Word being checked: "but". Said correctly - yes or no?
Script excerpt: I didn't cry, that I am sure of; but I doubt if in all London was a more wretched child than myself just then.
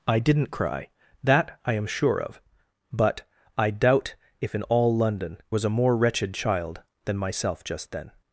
yes